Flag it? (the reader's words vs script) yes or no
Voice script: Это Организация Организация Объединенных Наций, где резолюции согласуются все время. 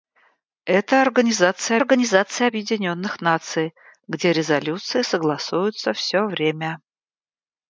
no